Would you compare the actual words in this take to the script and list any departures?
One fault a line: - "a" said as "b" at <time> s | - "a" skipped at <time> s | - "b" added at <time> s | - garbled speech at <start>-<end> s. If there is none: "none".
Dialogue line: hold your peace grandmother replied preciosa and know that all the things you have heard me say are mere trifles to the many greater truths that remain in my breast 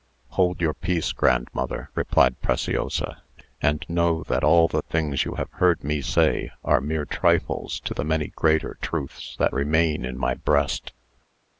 none